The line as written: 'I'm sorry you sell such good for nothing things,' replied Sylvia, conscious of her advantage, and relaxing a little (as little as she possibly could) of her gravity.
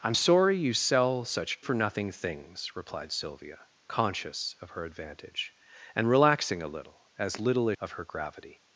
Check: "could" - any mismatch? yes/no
yes